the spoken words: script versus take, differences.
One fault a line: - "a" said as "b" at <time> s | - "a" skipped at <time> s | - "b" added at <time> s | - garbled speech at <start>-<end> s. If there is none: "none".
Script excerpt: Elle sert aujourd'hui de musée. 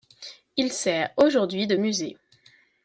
- "Elle" said as "Il" at 0.6 s